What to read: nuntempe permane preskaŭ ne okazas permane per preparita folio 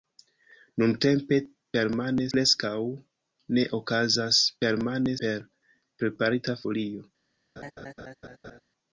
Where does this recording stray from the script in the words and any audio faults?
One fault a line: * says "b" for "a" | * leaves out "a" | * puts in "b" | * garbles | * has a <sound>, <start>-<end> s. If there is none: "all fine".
* has a laugh, 7.6-8.6 s